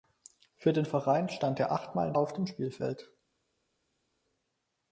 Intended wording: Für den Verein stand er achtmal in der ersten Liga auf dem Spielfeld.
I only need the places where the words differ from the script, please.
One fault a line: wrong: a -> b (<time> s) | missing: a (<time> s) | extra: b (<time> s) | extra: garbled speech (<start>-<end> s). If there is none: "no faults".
missing: der ersten Liga (2.1 s)